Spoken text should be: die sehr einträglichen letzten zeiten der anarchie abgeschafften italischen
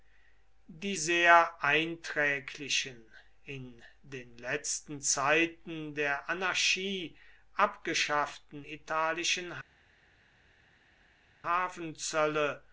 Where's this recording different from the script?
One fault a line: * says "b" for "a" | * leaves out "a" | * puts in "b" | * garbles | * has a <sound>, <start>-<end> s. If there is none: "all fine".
* puts in "in den"